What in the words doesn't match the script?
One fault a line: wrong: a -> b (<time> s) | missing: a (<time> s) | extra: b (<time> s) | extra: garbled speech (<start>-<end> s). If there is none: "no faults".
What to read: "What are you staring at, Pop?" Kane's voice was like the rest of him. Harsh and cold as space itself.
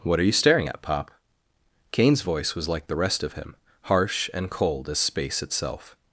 no faults